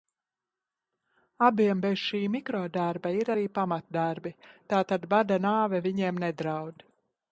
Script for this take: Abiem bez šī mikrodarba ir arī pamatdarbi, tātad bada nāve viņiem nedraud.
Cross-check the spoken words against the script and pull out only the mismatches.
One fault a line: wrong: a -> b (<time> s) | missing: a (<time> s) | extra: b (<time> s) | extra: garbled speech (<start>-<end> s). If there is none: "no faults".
no faults